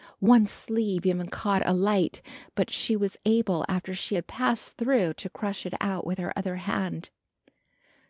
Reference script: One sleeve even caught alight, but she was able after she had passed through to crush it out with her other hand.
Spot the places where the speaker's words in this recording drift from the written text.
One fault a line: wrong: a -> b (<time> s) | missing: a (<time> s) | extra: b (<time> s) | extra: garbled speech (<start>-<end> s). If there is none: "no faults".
no faults